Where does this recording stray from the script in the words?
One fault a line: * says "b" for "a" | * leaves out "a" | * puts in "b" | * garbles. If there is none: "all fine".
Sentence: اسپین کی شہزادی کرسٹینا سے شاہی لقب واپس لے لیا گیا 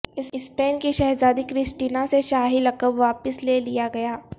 all fine